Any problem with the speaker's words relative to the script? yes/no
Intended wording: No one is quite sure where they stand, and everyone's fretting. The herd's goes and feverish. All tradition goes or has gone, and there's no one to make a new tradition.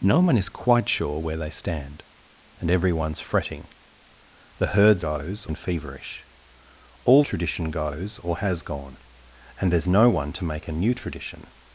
no